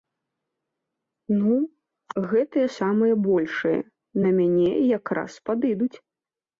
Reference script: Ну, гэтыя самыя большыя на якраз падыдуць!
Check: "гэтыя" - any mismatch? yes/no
no